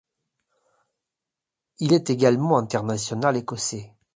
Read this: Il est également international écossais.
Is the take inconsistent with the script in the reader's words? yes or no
no